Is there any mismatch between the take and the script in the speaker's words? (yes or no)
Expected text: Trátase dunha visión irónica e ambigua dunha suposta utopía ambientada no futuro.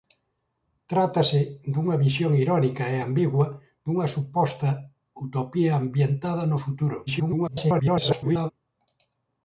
yes